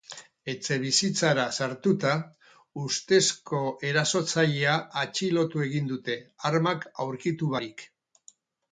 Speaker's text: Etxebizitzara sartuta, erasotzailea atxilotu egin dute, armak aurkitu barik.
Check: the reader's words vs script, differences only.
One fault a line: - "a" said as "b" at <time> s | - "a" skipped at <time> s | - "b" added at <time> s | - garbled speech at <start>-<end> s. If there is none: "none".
- "ustezko" added at 2.8 s